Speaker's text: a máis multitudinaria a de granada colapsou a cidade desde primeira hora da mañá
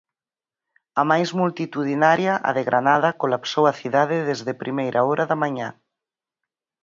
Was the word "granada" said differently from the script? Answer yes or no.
no